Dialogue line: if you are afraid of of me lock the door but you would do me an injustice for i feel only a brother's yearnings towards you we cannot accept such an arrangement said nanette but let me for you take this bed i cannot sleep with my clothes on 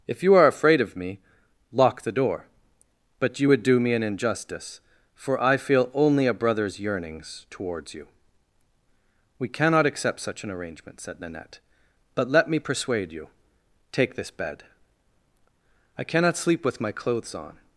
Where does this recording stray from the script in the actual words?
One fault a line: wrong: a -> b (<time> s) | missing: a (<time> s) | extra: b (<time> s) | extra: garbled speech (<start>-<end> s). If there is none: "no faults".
missing: of (1.0 s)
wrong: for -> persuade (12.6 s)